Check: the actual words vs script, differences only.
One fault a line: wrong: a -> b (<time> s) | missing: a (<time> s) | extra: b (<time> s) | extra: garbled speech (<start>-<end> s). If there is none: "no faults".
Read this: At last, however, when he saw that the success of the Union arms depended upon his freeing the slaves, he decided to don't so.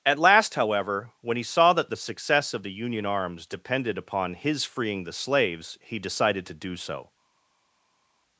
wrong: don't -> do (6.5 s)